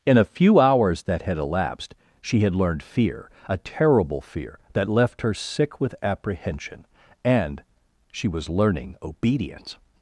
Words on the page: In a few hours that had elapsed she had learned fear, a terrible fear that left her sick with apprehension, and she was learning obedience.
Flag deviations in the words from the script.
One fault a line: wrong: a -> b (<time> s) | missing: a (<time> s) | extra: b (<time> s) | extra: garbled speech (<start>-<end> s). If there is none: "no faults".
no faults